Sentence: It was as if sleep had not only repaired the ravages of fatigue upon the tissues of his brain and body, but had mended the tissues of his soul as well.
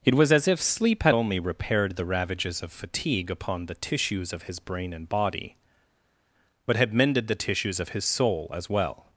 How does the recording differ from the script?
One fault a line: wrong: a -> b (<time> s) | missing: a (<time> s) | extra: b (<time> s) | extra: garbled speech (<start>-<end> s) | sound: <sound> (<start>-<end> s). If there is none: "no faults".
missing: not (1.1 s)